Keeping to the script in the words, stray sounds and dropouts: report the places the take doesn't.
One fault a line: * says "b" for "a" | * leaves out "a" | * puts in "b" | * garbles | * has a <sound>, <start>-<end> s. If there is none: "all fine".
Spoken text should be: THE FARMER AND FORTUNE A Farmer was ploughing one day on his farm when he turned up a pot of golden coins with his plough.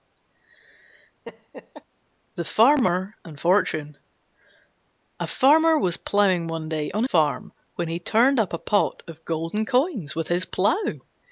* has a laugh, 1.3-1.8 s
* leaves out "his"